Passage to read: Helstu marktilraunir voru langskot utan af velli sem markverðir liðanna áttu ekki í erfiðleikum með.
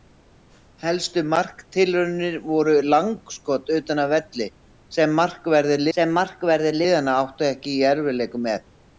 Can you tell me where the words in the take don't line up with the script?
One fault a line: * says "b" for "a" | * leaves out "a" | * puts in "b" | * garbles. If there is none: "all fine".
* puts in "sem markverðir"